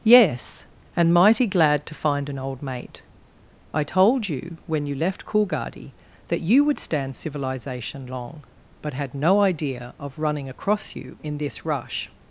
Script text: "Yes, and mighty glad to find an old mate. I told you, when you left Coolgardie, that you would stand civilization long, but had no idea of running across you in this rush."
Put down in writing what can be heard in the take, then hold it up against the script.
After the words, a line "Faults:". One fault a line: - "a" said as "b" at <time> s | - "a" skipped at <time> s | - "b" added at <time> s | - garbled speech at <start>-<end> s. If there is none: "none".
"Yes, and mighty glad to find an old mate. I told you, when you left Coolgardie, that you would stand civilization long, but had no idea of running across you in this rush."
Faults:
none